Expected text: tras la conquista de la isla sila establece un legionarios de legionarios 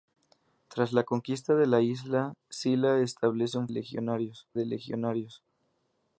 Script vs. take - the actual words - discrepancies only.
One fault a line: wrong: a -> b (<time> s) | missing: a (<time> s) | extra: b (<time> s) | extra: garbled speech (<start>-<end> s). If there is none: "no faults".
no faults